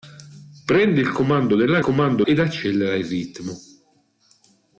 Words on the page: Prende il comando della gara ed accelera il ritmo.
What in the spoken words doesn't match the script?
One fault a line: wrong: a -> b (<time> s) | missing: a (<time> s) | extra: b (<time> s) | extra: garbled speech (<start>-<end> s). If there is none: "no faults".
wrong: gara -> comando (1.8 s)